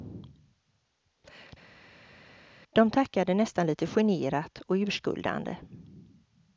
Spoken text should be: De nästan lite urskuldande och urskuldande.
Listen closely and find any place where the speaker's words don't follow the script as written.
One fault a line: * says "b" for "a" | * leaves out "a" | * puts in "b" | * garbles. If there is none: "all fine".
* puts in "tackade"
* says "generat" for "urskuldande"